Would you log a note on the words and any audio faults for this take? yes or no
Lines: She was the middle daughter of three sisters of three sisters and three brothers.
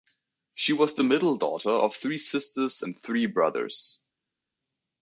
yes